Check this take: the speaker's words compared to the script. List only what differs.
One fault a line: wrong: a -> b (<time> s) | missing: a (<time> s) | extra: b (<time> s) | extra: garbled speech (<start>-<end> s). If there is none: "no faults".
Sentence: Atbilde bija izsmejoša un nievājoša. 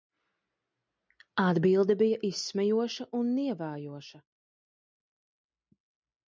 no faults